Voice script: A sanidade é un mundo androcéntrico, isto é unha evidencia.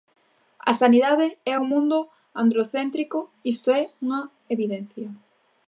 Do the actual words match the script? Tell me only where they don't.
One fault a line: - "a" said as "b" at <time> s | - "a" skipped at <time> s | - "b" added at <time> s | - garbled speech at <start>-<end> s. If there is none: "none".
none